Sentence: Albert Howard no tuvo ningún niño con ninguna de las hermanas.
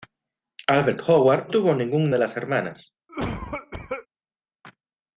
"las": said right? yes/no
yes